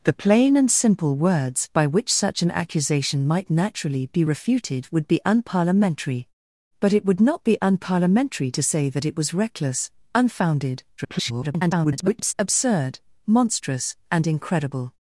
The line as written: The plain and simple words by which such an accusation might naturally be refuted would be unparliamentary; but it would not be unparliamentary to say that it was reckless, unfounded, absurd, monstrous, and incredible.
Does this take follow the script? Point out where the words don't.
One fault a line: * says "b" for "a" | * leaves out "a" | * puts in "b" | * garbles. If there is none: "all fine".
* garbles